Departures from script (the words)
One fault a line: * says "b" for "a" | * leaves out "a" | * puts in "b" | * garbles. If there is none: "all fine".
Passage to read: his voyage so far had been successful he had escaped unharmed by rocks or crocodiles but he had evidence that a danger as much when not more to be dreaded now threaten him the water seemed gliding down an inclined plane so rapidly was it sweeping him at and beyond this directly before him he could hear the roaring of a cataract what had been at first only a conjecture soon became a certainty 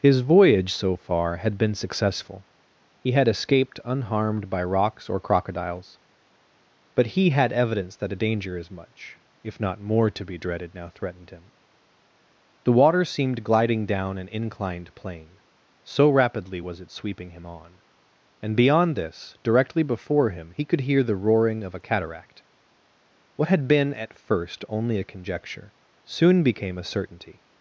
* says "if" for "when"
* says "threatened" for "threaten"
* says "on" for "at"